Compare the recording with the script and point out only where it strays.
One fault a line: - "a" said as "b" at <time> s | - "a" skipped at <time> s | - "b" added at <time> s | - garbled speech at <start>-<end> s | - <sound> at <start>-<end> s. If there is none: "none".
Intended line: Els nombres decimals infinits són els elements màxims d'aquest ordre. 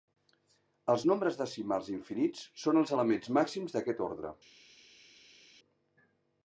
none